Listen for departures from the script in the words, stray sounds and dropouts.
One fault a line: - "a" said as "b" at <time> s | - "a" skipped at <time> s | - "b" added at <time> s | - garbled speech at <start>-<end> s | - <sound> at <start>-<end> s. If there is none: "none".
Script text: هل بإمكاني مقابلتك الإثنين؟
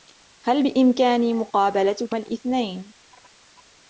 none